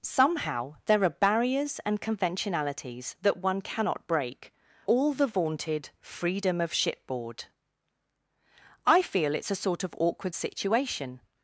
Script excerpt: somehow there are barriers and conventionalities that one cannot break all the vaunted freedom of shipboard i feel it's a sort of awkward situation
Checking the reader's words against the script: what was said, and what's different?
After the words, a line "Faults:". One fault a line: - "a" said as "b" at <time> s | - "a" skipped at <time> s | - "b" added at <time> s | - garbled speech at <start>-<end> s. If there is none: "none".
somehow there are barriers and conventionalities that one cannot break all the vaunted freedom of shipboard i feel it's a sort of awkward situation
Faults:
none